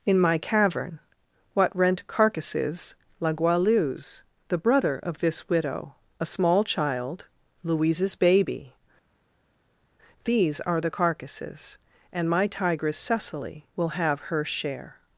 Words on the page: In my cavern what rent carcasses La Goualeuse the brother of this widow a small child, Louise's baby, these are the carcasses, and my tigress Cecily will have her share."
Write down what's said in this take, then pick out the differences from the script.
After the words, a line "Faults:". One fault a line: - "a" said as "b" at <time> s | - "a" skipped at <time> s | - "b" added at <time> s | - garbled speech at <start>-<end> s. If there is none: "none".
In my cavern what rent carcasses La Goualeuse the brother of this widow a small child, Louise's baby, these are the carcasses, and my tigress Cecily will have her share."
Faults:
none